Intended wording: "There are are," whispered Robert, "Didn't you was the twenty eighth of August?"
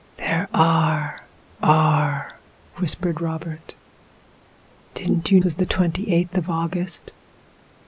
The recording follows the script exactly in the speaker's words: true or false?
true